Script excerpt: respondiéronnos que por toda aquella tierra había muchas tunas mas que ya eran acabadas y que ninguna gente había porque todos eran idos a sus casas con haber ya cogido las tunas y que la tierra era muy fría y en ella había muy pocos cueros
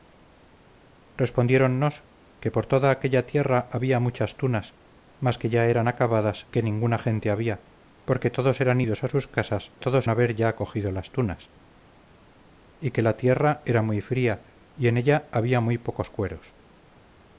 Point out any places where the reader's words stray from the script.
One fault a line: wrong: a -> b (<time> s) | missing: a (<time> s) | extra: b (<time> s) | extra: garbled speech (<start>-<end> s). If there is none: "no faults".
missing: y (6.5 s)
wrong: con -> todos (9.8 s)